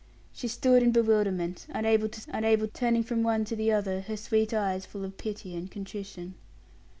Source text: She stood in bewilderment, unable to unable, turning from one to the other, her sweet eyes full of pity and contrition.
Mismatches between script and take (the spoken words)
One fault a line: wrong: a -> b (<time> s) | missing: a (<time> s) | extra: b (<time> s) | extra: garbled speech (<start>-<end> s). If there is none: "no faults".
no faults